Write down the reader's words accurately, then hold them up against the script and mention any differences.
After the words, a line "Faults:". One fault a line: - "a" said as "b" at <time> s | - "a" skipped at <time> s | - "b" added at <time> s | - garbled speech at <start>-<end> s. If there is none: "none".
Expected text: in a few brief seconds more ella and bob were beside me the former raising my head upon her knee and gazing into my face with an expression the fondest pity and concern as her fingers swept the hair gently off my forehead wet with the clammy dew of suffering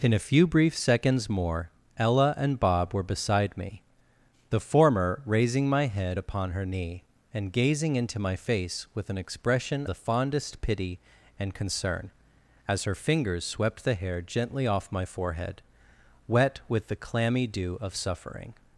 in a few brief seconds more ella and bob were beside me the former raising my head upon her knee and gazing into my face with an expression the fondest pity and concern as her fingers swept the hair gently off my forehead wet with the clammy dew of suffering
Faults:
none